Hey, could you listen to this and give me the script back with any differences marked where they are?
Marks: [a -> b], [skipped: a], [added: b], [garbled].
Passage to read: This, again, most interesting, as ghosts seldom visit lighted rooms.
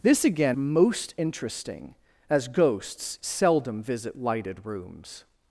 This, again, most interesting, as ghosts seldom visit lighted rooms.